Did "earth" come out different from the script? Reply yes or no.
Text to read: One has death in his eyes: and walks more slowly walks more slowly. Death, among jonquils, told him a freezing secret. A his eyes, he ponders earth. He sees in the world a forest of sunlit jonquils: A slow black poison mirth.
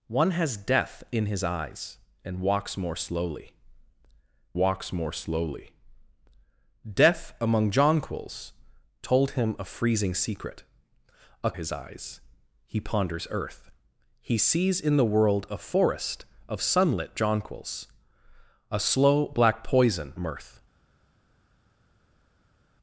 no